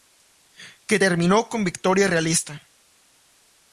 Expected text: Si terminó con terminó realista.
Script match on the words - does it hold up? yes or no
no